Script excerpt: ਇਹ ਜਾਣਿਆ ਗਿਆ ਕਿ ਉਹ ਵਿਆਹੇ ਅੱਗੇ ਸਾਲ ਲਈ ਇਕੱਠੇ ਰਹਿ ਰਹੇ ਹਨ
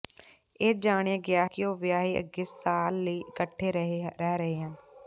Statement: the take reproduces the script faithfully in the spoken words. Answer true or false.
true